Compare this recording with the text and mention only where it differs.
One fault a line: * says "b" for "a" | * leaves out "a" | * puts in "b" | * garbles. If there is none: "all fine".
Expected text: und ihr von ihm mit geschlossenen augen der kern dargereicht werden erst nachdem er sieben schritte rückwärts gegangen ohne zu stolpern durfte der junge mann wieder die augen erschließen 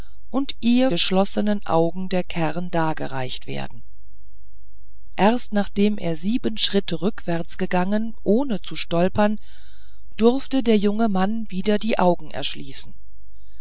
* leaves out "von ihm mit"